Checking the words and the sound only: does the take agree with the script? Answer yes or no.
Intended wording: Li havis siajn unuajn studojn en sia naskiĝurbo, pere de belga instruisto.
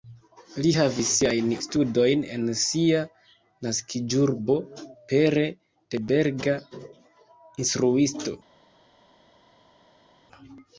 no